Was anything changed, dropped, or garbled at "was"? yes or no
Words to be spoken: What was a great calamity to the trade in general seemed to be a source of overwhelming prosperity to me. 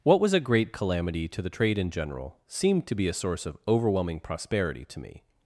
no